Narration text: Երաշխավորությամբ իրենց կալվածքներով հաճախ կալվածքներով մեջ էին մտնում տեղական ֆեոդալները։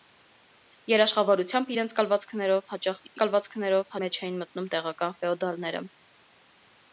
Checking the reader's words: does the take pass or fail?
pass